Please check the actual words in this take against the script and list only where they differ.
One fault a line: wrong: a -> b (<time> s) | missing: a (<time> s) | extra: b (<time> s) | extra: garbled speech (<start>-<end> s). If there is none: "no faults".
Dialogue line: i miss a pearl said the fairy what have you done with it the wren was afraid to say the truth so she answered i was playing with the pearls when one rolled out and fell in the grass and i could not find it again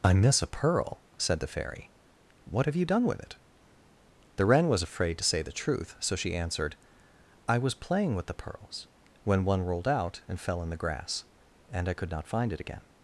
no faults